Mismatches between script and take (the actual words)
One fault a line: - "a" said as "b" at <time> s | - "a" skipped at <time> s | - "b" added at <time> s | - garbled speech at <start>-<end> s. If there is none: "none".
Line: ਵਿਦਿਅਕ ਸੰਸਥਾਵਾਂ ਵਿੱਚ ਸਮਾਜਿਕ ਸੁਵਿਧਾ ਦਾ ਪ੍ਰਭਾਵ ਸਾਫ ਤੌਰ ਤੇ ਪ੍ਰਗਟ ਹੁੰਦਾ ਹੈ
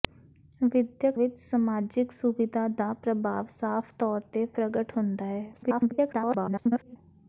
- "ਸੰਸਥਾਵਾਂ" skipped at 1.2 s
- garbled speech at 5.5-7.0 s